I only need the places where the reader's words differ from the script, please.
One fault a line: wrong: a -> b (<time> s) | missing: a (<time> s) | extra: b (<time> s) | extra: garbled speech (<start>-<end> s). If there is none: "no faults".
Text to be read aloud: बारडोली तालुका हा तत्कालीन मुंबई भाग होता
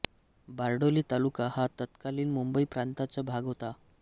extra: प्रांताचा (2.7 s)